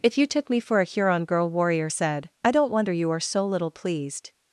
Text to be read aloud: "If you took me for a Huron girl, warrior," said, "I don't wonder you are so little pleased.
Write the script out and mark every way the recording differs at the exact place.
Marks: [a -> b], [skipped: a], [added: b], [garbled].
"If you took me for a Huron girl, warrior," said, "I don't wonder you are so little pleased.